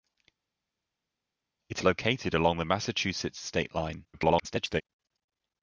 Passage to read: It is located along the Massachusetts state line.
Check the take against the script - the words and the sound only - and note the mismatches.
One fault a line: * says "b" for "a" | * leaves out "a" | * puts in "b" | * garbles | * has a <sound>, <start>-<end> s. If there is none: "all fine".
* leaves out "is"
* garbles